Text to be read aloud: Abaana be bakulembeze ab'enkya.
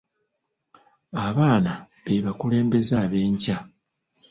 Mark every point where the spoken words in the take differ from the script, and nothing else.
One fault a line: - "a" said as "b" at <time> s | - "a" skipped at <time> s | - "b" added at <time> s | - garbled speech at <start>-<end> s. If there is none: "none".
none